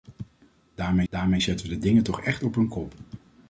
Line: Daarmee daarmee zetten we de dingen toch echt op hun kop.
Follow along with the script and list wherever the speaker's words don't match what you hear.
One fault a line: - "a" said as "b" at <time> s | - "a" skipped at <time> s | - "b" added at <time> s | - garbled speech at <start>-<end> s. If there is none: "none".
none